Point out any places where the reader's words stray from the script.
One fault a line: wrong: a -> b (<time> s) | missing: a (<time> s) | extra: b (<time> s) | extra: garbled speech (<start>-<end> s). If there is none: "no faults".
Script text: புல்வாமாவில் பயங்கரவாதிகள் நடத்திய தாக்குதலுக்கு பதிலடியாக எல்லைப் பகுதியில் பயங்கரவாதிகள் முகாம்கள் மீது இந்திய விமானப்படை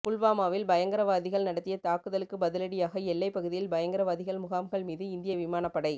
no faults